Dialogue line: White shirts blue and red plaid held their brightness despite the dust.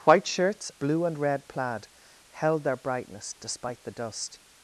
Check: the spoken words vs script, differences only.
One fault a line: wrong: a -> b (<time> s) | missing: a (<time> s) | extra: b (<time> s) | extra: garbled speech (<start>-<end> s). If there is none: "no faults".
no faults